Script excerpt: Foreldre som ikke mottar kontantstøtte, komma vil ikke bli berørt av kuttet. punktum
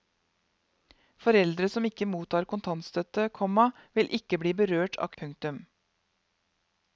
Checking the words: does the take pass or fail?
fail